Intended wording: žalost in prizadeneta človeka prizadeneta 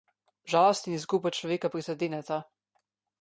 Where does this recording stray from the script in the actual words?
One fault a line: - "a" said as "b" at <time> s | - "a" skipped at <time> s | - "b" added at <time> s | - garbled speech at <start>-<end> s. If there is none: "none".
- "prizadeneta" said as "izguba" at 1.0 s